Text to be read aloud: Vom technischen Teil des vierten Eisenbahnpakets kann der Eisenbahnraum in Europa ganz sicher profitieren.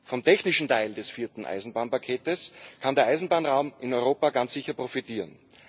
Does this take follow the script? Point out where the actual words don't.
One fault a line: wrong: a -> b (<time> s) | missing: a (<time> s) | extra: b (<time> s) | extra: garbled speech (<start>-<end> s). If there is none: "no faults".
no faults